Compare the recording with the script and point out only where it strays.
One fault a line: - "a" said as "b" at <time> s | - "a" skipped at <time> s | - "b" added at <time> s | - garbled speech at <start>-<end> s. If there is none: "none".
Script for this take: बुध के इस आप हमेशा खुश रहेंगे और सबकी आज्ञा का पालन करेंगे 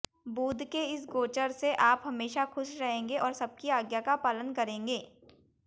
- "गोचर से" added at 1.1 s